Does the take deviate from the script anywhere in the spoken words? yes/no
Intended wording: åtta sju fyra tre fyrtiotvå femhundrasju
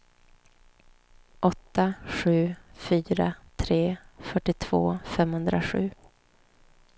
no